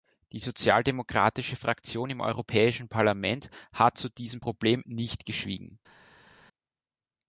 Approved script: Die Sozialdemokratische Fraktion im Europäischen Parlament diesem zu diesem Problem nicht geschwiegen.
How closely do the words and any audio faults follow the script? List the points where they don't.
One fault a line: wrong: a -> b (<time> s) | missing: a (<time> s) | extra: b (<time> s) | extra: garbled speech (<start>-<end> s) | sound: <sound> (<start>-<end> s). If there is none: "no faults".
wrong: diesem -> hat (3.7 s)